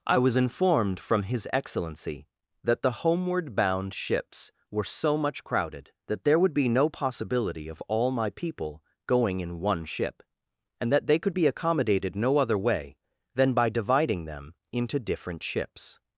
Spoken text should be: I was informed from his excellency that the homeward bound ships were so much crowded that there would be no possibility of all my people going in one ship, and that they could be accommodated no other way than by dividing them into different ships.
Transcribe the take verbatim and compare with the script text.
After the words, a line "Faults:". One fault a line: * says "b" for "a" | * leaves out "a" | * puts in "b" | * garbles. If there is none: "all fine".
I was informed from his excellency that the homeward bound ships were so much crowded that there would be no possibility of all my people going in one ship, and that they could be accommodated no other way than by dividing them into different ships.
Faults:
all fine